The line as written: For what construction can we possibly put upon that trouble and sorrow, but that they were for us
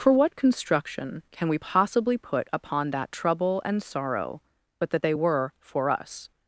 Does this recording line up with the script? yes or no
yes